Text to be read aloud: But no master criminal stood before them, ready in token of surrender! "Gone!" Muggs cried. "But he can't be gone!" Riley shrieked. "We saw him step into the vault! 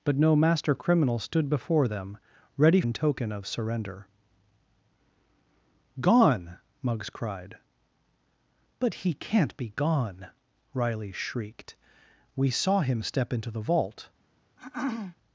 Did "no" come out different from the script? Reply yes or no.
no